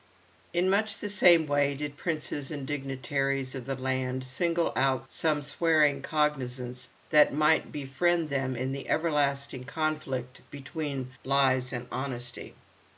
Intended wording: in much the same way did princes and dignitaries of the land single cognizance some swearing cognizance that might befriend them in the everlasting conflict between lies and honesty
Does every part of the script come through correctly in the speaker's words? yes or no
no